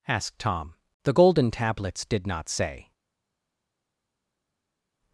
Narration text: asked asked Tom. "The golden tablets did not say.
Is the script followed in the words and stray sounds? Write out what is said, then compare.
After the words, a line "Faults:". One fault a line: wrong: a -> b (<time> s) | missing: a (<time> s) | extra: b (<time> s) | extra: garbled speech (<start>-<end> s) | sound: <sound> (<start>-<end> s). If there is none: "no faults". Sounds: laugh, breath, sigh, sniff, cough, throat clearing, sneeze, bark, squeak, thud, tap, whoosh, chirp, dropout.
asked Tom. "The golden tablets did not say.
Faults:
missing: asked (0.4 s)